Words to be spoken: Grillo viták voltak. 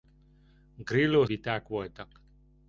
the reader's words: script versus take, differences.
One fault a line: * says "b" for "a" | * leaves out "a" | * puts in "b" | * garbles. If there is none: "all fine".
all fine